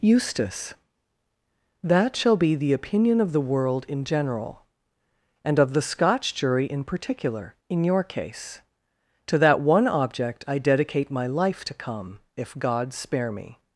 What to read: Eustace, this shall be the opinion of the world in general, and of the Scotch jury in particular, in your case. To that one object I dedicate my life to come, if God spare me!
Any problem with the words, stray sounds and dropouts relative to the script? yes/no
yes